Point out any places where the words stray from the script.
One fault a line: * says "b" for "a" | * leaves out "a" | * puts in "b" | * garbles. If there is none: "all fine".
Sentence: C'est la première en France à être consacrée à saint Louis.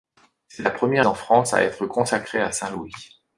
all fine